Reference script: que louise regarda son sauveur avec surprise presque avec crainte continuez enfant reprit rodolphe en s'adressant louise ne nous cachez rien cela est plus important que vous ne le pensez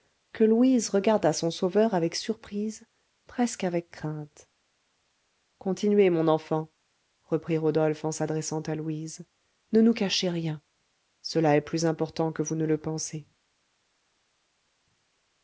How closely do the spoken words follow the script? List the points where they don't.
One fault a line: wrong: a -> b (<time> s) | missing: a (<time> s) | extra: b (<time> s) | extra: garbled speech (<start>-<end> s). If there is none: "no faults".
extra: mon (6.1 s)
extra: à (8.6 s)